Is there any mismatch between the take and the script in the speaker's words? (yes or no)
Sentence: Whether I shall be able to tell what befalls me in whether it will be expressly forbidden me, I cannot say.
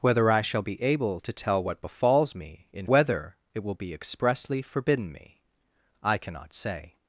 no